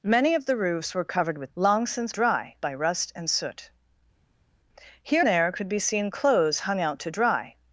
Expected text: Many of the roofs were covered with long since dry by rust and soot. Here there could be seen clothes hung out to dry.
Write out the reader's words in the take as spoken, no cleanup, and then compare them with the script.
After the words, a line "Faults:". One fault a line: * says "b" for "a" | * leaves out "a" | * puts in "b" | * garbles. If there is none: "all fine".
Many of the roofs were covered with long since dry by rust and soot. Here there could be seen clothes hung out to dry.
Faults:
all fine